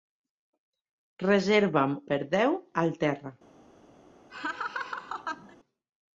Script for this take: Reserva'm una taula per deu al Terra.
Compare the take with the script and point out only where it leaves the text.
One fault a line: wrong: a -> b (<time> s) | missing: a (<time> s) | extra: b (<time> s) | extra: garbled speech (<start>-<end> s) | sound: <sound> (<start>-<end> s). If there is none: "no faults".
missing: una taula (1.9 s)
sound: laugh (4.3-5.6 s)